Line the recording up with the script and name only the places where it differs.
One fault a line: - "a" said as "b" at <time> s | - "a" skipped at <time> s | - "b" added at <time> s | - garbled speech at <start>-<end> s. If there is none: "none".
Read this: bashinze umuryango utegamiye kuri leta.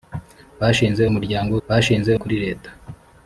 - "utegamiye" said as "bashinze" at 1.7 s